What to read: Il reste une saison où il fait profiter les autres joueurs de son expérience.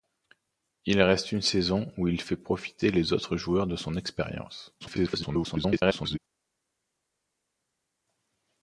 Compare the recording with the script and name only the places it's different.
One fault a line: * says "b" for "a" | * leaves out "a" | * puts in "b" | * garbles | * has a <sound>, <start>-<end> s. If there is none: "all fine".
* garbles